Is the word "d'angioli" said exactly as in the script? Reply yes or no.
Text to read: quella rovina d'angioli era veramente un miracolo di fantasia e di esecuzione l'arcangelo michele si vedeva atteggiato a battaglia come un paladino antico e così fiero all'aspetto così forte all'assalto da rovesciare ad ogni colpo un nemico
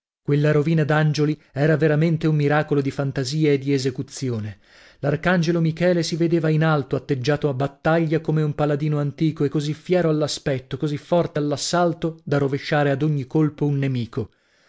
yes